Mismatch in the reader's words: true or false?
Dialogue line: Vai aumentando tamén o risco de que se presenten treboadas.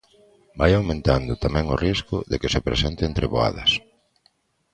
false